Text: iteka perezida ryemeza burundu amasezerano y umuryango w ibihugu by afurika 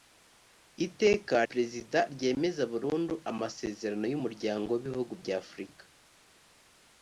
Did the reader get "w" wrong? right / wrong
right